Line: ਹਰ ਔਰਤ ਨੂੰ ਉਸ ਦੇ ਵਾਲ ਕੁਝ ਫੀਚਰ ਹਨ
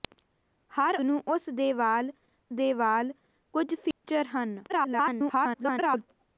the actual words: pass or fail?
fail